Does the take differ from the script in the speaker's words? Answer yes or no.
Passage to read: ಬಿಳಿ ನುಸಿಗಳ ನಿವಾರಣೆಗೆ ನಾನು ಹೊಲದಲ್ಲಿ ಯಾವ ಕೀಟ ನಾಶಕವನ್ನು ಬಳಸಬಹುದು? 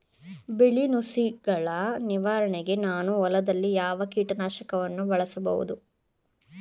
no